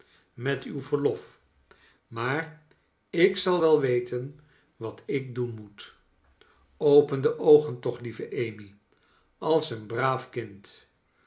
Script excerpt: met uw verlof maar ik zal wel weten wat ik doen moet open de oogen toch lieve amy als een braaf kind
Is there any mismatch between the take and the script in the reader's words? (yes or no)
no